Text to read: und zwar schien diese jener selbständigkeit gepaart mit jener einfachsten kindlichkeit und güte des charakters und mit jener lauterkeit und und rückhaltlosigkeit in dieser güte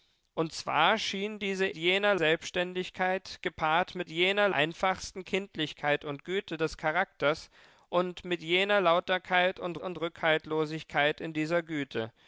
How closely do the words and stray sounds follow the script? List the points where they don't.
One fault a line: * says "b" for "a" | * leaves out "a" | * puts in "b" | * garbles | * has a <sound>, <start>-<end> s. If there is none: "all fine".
all fine